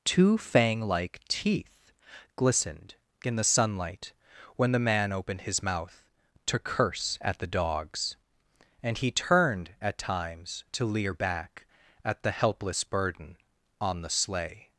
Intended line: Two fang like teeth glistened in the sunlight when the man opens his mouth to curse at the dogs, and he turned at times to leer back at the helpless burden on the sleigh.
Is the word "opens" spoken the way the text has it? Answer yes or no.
no